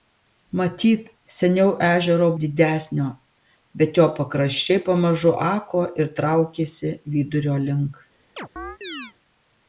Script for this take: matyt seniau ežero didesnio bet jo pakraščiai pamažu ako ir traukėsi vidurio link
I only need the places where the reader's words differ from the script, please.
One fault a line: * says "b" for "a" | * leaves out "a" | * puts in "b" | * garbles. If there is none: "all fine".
all fine